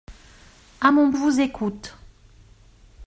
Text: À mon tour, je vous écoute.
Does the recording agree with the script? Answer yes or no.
no